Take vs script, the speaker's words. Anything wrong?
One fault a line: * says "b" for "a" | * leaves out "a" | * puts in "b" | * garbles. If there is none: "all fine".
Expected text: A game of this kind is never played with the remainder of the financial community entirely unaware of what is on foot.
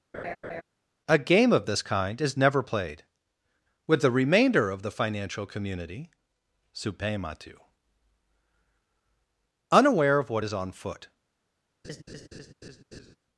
* says "supematu" for "entirely"